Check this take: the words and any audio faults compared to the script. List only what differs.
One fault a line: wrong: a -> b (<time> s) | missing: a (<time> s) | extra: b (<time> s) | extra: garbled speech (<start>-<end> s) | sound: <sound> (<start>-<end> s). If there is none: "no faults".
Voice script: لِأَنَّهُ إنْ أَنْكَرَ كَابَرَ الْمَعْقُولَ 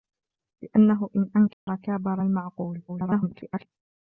sound: dropout (1.5-1.7 s)
extra: garbled speech (2.9-3.7 s)